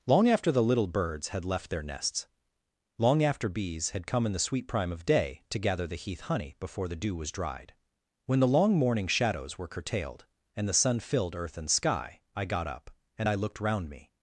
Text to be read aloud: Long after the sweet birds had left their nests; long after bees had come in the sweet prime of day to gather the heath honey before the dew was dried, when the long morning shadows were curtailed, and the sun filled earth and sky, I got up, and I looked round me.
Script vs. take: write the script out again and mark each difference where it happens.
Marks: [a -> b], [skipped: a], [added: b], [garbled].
Long after the [sweet -> little] birds had left their nests; long after bees had come in the sweet prime of day to gather the heath honey before the dew was dried, when the long morning shadows were curtailed, and the sun filled earth and sky, I got up, and I looked round me.